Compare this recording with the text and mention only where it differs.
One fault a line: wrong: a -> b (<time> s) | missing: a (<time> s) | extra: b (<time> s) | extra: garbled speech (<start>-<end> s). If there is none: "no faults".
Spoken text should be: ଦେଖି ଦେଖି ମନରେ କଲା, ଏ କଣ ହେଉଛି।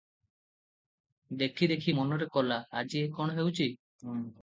extra: ଆଜି (2.7 s)